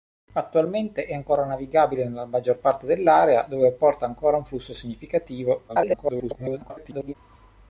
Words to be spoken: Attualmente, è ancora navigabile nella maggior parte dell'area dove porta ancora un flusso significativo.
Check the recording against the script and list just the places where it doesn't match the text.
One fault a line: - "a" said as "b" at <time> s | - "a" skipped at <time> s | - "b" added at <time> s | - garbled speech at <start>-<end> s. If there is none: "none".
- garbled speech at 5.7-7.1 s